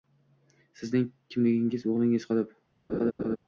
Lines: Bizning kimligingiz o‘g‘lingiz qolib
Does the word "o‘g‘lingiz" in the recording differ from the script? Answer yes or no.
no